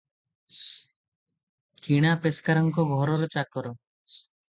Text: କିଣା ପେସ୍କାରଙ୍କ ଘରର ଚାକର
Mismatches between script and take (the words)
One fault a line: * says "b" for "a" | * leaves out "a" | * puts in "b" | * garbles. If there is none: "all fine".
all fine